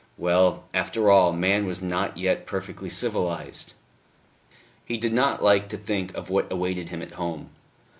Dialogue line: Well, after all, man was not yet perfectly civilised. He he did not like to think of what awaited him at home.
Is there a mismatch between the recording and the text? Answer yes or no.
yes